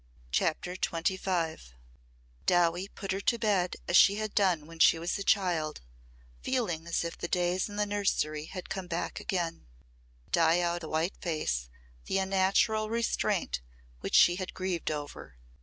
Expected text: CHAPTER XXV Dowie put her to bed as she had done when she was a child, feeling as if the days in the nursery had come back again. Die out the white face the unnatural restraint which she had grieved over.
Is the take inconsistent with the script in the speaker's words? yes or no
no